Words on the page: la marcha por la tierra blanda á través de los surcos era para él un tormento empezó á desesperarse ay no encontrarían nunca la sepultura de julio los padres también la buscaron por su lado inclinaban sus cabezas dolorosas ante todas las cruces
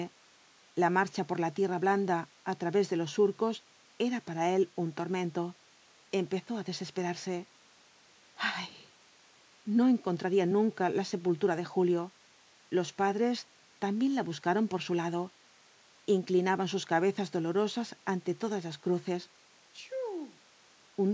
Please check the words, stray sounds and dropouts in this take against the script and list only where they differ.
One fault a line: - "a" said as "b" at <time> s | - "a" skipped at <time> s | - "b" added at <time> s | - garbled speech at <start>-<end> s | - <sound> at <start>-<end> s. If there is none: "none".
- sneeze at 19.7-20.4 s